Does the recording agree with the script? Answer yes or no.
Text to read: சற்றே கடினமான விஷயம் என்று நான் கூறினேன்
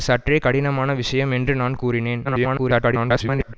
no